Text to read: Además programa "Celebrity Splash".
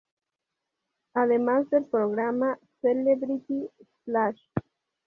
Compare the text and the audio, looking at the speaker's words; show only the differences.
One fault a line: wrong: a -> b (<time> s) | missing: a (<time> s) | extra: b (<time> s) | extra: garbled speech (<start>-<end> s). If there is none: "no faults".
extra: del (1.7 s)